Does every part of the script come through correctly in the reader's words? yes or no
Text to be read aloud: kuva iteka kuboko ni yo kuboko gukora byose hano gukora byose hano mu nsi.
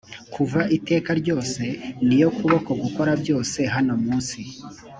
no